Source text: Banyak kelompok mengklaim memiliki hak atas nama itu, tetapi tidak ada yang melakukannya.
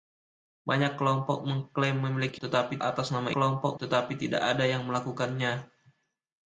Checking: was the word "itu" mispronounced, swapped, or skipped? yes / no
yes